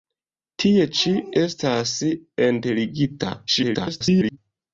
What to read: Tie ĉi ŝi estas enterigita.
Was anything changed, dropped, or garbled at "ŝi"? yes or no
yes